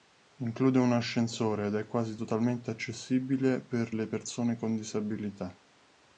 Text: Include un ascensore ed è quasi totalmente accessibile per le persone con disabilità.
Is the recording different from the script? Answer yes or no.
no